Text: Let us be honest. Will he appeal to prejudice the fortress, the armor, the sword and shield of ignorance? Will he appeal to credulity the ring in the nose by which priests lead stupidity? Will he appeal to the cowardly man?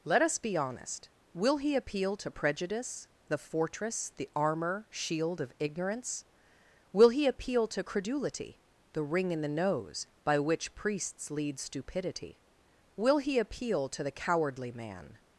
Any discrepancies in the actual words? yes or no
yes